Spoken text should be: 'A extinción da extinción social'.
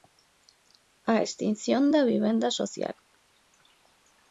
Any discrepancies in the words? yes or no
yes